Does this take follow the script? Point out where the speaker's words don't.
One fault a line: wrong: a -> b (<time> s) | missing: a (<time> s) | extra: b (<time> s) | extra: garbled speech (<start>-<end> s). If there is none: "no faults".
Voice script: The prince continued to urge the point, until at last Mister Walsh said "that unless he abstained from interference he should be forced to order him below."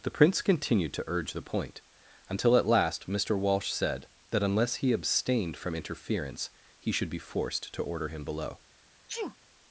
no faults